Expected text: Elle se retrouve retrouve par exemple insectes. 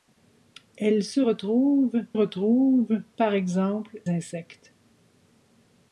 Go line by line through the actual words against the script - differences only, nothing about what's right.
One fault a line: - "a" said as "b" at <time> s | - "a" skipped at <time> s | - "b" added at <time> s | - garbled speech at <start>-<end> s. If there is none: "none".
none